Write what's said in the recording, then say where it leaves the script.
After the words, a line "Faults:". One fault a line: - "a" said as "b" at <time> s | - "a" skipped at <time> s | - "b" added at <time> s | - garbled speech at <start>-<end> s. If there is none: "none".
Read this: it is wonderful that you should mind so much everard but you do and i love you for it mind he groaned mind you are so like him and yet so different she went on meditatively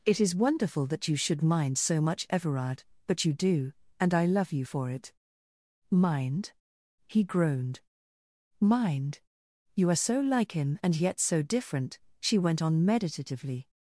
it is wonderful that you should mind so much everard but you do and i love you for it mind he groaned mind you are so like him and yet so different she went on meditatively
Faults:
none